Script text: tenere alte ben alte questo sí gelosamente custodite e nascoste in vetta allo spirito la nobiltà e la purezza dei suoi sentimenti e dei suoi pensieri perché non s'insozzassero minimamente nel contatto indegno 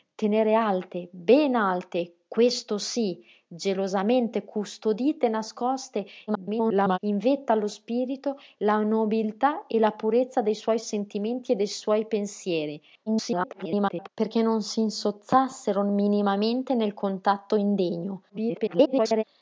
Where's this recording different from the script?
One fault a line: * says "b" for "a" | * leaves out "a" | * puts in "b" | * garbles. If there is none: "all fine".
* garbles
* garbles
* garbles